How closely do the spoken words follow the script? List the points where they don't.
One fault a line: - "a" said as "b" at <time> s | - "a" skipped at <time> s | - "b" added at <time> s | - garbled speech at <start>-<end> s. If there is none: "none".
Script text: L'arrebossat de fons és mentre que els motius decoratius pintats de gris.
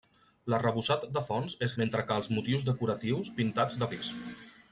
none